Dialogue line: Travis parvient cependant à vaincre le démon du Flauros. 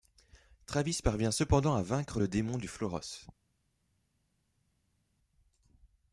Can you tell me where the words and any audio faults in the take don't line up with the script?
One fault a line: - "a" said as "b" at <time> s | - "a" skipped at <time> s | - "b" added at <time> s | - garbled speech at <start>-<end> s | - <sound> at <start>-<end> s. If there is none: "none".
none